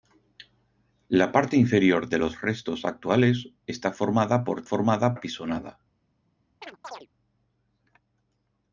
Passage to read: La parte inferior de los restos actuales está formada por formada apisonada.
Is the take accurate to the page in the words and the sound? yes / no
no